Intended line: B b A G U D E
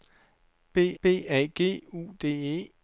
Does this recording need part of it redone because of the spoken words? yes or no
no